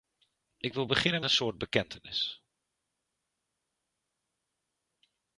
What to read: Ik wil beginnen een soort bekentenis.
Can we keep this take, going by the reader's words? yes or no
yes